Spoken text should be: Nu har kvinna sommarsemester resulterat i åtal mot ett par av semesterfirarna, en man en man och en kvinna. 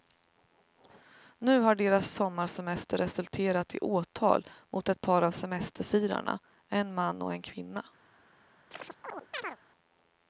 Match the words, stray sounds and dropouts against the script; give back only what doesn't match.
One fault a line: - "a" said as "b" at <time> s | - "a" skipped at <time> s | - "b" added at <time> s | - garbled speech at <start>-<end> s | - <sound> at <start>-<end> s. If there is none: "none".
- "kvinna" said as "deras" at 1.8 s
- "en man" skipped at 7.2 s
- chirp at 8.7-9.6 s